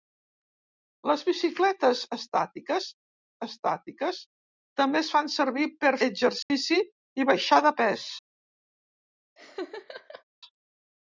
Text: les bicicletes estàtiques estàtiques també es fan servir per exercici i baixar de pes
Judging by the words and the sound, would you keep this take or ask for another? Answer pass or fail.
fail